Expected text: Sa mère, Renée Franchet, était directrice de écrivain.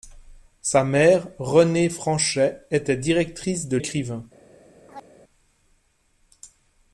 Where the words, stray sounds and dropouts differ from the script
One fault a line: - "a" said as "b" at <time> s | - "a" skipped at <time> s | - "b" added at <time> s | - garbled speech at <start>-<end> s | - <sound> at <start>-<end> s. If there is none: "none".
- chirp at 4.9-5.1 s